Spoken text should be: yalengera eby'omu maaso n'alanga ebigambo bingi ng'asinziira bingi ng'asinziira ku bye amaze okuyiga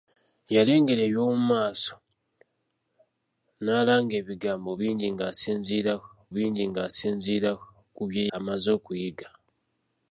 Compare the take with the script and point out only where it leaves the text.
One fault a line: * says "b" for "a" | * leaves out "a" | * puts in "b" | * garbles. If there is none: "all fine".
all fine